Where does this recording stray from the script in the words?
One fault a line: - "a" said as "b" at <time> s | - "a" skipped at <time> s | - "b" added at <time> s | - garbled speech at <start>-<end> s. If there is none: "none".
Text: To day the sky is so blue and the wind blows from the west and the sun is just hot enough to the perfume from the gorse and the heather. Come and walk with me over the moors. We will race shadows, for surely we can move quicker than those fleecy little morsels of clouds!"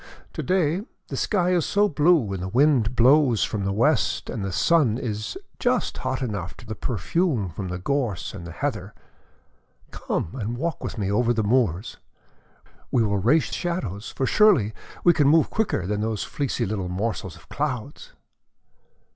none